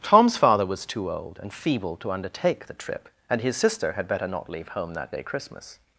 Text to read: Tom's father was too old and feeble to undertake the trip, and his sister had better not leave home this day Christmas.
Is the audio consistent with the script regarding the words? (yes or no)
no